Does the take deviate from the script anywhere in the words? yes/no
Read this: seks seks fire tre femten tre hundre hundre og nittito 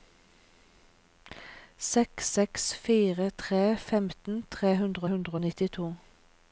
no